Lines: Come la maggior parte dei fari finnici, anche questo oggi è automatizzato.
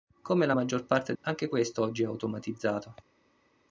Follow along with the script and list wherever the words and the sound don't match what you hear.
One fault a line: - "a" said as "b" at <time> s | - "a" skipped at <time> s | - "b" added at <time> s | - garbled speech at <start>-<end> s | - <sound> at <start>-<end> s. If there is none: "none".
- "dei fari finnici" skipped at 1.1 s